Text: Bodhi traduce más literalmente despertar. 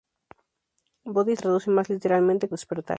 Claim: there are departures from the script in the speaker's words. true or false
false